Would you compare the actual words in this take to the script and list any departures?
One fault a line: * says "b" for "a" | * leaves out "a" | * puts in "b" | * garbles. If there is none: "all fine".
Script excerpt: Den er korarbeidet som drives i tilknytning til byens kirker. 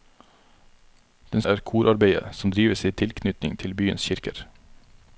all fine